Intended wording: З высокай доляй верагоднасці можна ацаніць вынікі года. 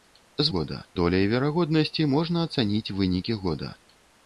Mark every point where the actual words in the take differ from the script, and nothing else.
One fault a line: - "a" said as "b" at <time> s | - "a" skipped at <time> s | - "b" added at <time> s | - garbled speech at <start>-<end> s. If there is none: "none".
- "высокай" said as "года" at 0.6 s